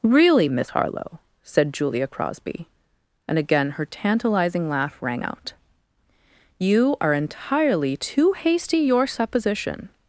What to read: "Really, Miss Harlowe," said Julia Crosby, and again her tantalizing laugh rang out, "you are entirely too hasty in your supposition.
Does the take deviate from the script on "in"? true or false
true